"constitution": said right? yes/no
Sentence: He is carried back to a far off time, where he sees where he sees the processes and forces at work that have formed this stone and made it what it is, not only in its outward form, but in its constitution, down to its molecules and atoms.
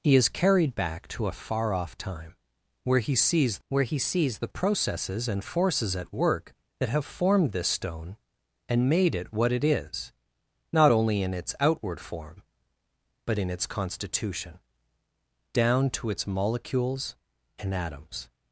yes